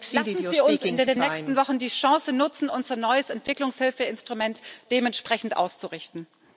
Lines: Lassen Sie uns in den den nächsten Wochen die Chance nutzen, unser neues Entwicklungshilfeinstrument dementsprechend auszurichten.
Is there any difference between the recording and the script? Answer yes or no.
no